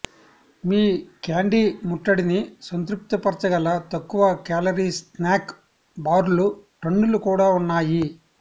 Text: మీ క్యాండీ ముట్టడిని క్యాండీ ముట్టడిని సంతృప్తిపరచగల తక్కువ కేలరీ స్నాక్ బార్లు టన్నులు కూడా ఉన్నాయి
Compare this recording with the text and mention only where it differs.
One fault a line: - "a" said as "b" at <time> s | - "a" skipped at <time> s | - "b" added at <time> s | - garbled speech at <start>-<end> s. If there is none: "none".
- "క్యాండీ ముట్టడిని" skipped at 2.4 s